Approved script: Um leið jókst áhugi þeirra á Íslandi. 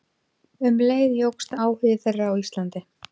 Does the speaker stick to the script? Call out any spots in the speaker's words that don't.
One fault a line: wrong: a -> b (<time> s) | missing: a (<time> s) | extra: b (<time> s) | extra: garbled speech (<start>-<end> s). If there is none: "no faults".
no faults